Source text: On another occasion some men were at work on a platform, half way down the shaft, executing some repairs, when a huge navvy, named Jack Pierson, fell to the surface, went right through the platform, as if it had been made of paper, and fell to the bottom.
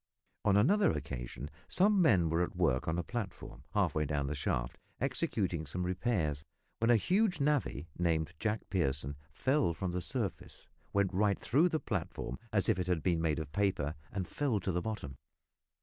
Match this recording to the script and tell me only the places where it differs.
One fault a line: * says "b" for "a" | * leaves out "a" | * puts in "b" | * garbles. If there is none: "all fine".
* says "from" for "to"